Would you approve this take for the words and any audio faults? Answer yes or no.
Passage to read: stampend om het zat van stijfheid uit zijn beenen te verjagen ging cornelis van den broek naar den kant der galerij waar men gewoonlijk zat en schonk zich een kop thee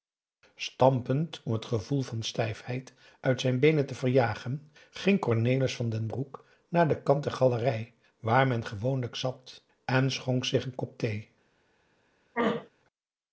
no